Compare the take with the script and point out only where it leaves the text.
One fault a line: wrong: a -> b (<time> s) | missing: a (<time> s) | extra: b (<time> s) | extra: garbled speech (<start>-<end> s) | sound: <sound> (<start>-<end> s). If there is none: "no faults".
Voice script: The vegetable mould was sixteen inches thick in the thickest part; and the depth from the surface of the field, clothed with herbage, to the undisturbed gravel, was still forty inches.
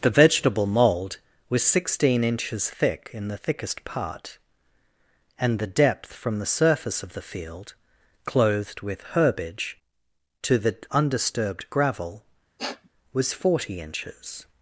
sound: sniff (12.6-12.9 s)
missing: still (13.3 s)